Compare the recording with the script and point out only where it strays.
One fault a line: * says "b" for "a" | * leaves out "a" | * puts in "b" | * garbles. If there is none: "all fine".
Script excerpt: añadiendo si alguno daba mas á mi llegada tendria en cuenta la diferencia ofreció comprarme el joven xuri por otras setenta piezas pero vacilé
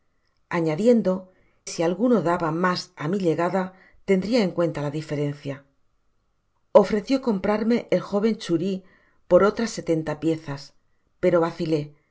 all fine